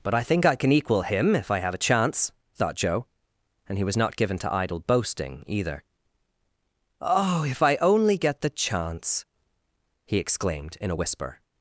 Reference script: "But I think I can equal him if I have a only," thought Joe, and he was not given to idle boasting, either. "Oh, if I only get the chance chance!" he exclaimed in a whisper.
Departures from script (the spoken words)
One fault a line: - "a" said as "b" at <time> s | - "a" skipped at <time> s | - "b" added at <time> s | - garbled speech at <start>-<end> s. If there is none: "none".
- "only" said as "chance" at 1.8 s
- "chance" skipped at 9.2 s